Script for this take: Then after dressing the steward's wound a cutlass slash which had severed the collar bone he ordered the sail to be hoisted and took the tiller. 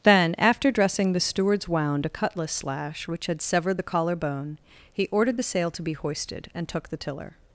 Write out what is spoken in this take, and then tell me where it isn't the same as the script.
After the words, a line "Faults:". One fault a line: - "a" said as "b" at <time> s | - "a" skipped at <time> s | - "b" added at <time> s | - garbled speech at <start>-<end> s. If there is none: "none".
Then after dressing the steward's wound a cutlass slash which had severed the collar bone he ordered the sail to be hoisted and took the tiller.
Faults:
none